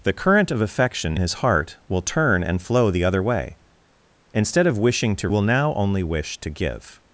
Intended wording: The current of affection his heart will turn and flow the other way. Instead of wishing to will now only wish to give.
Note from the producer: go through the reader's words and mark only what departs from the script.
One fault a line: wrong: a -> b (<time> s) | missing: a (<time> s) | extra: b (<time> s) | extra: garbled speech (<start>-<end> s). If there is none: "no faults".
no faults